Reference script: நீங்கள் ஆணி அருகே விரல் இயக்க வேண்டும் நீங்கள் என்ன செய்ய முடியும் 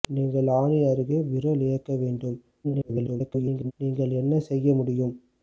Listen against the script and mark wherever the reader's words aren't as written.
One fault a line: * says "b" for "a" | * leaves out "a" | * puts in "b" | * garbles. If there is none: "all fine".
* garbles